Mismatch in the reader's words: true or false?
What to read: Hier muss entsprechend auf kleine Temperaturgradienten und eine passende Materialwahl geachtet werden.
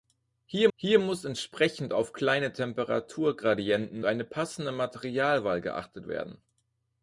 true